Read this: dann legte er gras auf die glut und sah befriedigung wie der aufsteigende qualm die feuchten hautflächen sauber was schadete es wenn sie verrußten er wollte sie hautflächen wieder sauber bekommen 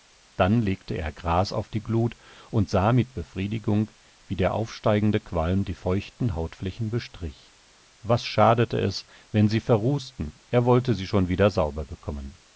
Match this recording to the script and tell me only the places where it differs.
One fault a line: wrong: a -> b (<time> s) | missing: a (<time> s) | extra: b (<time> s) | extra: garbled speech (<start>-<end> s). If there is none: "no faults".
extra: mit (2.9 s)
wrong: sauber -> bestrich (6.9 s)
wrong: hautflächen -> schon (11.1 s)